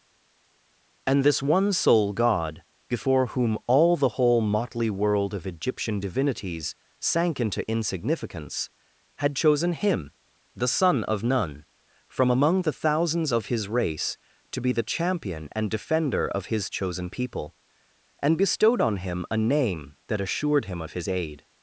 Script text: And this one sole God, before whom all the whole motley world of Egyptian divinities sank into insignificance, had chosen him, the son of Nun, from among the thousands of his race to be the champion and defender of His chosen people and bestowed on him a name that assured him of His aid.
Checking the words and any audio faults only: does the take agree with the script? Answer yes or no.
yes